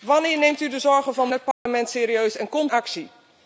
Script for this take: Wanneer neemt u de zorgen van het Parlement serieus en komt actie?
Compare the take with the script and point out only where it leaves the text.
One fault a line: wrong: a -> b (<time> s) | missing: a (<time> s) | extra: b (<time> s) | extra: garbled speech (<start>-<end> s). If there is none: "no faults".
no faults